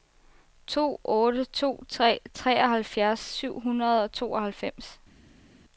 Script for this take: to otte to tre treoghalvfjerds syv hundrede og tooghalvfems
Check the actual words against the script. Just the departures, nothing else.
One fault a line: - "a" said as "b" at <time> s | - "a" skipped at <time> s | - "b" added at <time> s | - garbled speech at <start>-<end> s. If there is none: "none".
none